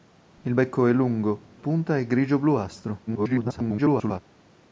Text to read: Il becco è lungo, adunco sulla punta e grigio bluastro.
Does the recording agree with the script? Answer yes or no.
no